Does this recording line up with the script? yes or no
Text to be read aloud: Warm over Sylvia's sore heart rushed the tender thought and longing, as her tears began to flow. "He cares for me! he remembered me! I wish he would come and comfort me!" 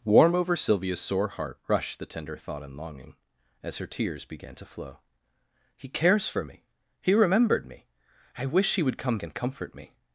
yes